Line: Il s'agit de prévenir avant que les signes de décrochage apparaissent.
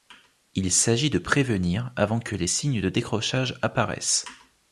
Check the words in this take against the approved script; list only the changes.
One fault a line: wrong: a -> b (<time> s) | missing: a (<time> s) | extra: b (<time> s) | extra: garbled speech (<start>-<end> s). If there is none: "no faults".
no faults